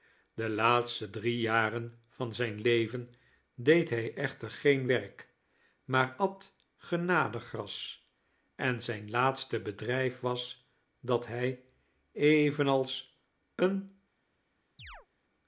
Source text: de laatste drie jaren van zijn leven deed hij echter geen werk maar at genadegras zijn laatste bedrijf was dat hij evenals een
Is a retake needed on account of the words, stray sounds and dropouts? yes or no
yes